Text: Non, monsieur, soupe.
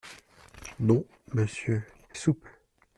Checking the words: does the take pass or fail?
pass